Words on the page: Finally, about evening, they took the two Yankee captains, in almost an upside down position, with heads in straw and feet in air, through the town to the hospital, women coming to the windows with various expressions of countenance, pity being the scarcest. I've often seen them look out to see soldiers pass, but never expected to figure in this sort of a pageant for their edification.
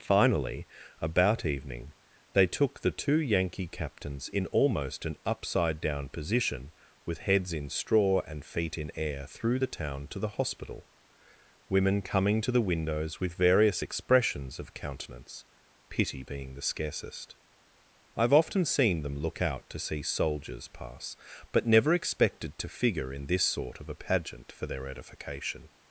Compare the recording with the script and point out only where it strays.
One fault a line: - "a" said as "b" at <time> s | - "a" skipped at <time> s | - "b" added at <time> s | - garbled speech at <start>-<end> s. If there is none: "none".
none